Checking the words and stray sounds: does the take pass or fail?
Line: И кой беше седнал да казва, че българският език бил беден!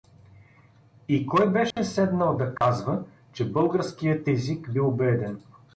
fail